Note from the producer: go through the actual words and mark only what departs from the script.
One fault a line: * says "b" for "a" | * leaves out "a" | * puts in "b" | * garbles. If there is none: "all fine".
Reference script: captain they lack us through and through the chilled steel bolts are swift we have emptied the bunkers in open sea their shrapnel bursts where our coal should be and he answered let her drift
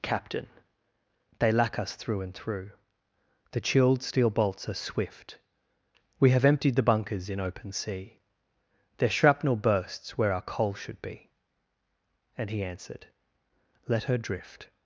all fine